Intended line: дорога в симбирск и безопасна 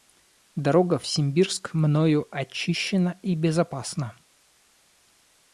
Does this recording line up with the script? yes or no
no